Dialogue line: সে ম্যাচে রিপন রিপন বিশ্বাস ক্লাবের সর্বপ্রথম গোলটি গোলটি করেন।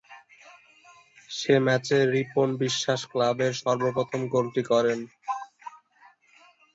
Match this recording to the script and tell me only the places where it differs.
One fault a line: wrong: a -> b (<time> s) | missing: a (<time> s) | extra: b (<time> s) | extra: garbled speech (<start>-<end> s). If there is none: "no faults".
missing: রিপন (2.5 s)
missing: গোলটি (4.6 s)